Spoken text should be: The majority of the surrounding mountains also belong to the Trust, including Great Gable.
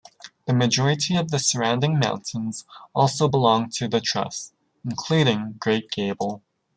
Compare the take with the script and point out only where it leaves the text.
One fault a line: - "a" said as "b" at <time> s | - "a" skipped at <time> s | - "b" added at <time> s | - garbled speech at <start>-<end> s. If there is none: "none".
none